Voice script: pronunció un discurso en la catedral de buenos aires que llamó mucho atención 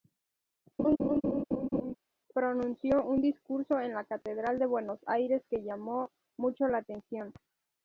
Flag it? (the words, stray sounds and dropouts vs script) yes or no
yes